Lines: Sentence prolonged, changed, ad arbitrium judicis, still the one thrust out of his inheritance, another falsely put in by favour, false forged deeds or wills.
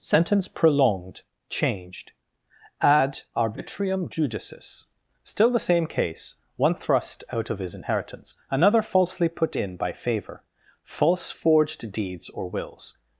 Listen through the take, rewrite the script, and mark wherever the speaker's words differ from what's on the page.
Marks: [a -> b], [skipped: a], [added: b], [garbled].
Sentence prolonged, changed, ad arbitrium judicis, still the [added: same case] one thrust out of his inheritance, another falsely put in by favour, false forged deeds or wills.